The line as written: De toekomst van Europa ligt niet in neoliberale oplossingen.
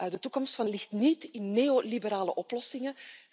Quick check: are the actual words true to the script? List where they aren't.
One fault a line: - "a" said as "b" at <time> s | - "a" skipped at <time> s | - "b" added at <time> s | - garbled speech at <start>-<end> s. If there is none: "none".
- "Europa" skipped at 0.7 s